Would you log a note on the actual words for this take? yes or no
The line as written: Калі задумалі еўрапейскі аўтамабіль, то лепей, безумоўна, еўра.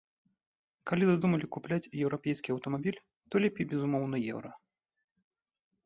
yes